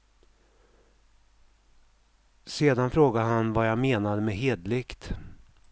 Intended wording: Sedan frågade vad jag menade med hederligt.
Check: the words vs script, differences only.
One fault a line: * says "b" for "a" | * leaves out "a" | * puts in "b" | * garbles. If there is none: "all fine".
* puts in "han"